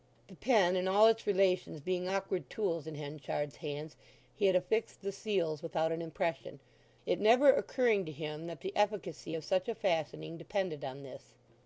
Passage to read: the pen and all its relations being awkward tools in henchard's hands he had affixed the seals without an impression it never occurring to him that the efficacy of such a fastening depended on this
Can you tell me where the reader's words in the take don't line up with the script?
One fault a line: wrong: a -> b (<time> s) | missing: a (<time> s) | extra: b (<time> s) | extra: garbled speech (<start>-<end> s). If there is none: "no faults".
no faults